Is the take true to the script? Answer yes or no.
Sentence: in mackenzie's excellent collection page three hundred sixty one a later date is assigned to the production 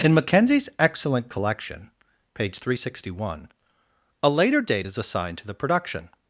yes